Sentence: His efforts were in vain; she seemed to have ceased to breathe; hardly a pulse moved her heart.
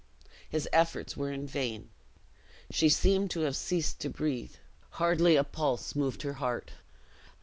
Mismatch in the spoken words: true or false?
false